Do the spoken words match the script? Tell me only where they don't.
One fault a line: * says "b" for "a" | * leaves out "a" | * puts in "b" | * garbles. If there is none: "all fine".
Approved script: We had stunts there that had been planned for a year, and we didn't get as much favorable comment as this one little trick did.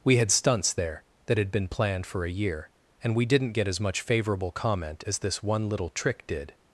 all fine